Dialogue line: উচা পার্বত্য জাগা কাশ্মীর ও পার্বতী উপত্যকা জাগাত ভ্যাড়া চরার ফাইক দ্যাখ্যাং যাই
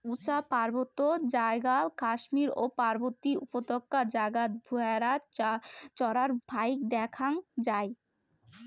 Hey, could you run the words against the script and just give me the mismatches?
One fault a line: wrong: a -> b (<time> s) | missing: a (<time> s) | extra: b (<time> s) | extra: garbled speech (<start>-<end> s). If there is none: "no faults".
no faults